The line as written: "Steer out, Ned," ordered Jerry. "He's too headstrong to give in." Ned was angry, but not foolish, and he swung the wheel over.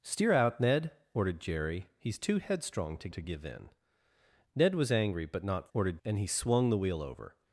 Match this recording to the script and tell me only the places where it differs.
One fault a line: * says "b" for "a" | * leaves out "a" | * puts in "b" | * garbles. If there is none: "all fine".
* puts in "to"
* says "ordered" for "foolish"